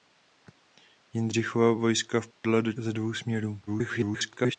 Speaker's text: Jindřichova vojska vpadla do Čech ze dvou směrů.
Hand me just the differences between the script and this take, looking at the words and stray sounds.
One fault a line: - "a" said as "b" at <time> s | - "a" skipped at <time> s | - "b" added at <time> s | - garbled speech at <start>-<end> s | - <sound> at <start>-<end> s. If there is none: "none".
- dropout at 2.3-2.4 s
- "Čech" skipped at 2.7 s
- garbled speech at 3.7-4.6 s